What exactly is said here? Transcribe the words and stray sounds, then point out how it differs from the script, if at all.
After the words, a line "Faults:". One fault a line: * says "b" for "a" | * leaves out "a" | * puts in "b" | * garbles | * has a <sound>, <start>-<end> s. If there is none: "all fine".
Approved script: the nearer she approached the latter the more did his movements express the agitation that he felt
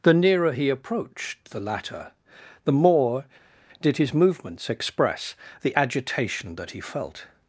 the nearer he approached the latter the more did his movements express the agitation that he felt
Faults:
* says "he" for "she"